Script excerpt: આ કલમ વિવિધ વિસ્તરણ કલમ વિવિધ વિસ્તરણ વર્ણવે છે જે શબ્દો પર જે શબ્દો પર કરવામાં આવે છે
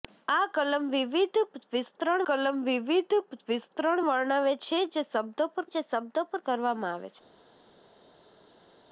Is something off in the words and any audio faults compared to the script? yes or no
no